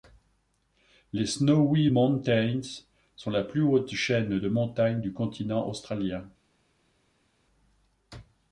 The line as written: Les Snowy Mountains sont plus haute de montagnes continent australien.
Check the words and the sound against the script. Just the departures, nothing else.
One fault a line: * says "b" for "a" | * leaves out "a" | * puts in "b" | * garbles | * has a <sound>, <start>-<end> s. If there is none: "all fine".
* puts in "la"
* puts in "chaîne"
* puts in "du"